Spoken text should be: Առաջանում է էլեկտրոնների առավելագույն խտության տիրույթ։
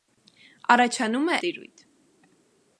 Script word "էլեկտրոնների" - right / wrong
wrong